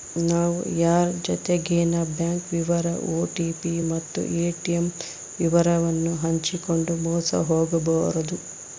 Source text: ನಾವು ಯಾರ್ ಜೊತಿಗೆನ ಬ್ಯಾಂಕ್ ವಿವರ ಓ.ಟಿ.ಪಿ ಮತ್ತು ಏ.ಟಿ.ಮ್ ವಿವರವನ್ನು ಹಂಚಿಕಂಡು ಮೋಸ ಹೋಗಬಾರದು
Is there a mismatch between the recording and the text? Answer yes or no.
no